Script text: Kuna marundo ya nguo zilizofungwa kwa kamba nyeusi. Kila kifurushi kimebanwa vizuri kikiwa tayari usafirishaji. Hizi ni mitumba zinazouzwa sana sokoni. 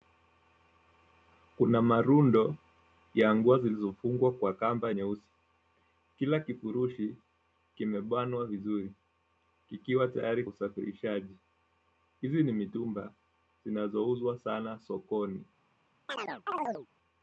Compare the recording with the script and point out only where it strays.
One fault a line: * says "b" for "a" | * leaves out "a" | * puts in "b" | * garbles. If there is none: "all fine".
all fine